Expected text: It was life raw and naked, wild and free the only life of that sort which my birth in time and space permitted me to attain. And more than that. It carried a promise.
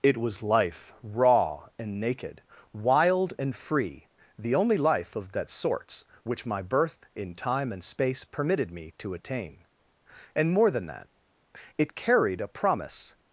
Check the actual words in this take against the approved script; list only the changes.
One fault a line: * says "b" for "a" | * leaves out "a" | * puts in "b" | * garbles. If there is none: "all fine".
* says "sorts" for "sort"